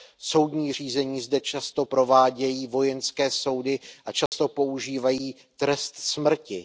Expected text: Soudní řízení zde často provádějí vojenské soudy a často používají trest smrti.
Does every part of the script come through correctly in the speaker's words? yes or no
yes